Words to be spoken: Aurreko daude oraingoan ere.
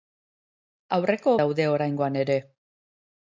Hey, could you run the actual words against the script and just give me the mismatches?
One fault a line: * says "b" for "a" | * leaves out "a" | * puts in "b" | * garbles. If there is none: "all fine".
all fine